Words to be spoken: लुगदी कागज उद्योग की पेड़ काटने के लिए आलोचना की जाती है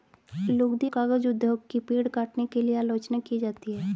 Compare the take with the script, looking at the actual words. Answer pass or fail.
pass